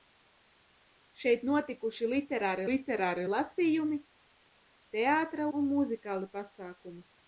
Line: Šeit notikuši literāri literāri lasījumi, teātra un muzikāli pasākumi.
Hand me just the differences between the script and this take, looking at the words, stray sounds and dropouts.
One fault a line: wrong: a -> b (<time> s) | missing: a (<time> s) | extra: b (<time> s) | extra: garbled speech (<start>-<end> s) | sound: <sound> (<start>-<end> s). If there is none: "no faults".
no faults